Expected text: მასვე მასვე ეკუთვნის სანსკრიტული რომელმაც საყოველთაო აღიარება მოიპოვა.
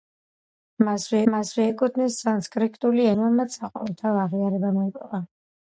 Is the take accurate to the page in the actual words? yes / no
yes